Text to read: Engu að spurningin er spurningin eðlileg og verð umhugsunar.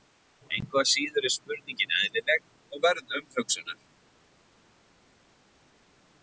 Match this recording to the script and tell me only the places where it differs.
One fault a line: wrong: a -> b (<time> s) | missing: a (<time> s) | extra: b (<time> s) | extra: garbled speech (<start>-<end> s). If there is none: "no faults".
wrong: spurningin -> síður (0.9 s)